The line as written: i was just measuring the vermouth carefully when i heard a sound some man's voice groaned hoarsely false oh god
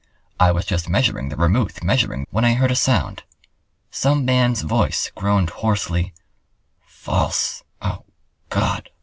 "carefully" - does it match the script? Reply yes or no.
no